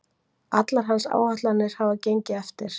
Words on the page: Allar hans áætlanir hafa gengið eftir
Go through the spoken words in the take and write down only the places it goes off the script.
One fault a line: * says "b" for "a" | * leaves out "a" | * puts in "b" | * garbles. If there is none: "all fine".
all fine